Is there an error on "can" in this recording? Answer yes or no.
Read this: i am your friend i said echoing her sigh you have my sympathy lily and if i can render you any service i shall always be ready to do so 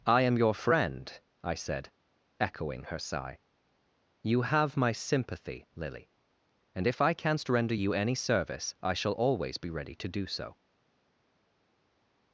yes